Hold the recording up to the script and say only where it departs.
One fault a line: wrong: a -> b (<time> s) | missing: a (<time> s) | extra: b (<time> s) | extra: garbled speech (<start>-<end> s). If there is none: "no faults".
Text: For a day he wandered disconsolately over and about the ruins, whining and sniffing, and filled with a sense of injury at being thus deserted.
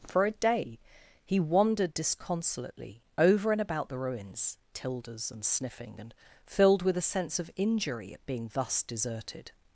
wrong: whining -> tildes (4.7 s)